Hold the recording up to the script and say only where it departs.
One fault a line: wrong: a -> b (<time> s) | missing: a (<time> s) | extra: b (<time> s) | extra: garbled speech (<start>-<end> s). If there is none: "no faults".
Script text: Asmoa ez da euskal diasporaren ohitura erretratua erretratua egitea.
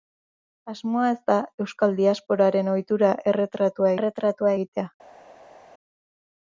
no faults